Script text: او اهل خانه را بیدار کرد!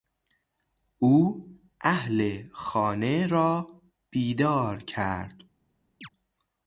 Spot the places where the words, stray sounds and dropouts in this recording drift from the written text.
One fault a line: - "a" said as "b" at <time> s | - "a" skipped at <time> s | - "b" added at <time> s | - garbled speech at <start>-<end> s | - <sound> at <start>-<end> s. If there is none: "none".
- chirp at 6.0-6.1 s